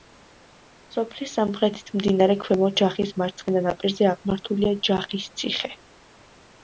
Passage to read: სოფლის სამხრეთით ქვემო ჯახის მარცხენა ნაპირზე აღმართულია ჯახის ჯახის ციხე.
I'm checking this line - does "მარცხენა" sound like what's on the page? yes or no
yes